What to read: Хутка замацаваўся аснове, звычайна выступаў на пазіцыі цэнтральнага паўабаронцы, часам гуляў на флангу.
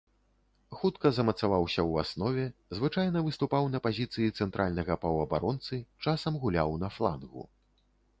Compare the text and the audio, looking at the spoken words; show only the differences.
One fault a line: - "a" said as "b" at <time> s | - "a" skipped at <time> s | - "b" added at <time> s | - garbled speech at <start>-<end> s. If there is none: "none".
- "ў" added at 1.9 s